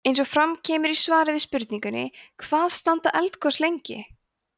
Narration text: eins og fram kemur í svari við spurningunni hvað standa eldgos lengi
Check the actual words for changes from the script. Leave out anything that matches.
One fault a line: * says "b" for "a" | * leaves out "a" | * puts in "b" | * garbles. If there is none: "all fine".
all fine